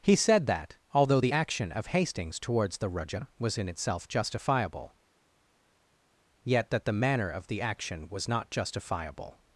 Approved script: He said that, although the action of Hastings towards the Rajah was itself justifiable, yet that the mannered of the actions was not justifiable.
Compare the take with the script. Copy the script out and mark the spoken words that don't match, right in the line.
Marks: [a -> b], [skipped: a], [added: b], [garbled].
He said that, although the action of Hastings towards the Rajah was [added: in] itself justifiable, yet that the [mannered -> manner] of the [actions -> action] was not justifiable.